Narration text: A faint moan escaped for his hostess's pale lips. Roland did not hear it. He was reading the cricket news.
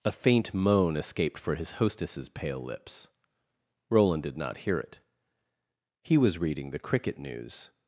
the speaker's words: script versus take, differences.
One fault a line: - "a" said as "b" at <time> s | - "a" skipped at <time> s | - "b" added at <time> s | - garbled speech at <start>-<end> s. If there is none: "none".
none